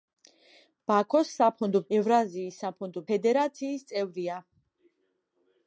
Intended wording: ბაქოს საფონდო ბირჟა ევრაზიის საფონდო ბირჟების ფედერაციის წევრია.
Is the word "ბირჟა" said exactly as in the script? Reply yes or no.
no